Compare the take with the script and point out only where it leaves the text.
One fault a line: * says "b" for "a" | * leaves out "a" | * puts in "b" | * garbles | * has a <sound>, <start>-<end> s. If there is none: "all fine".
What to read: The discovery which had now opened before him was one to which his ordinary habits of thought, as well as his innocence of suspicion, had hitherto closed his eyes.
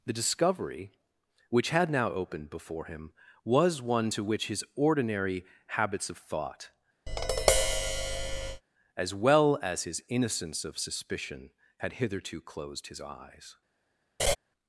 * has a tap, 7.1-8.6 s
* has a laugh, 14.2-14.4 s